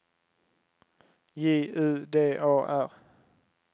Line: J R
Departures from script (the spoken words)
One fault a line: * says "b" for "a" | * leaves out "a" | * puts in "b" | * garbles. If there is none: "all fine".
* puts in "U D A"